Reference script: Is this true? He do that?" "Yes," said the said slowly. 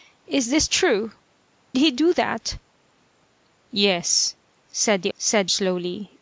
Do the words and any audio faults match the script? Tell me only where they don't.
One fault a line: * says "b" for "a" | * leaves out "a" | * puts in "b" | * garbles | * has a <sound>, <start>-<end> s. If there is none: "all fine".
all fine